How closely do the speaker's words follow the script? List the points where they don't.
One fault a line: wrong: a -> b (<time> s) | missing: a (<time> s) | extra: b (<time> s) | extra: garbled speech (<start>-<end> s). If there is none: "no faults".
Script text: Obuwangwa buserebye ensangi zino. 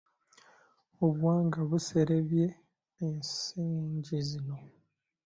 no faults